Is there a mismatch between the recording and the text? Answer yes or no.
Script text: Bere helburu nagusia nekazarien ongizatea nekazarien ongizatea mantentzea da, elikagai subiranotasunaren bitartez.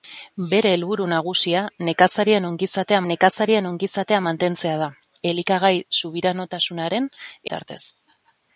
no